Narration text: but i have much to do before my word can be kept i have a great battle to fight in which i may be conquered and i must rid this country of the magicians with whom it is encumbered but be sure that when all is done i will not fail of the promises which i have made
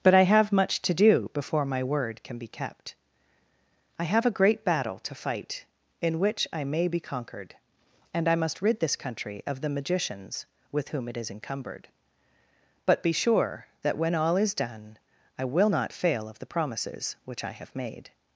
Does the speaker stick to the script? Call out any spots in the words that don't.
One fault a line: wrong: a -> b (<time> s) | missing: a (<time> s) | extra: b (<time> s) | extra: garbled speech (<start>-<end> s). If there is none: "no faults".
no faults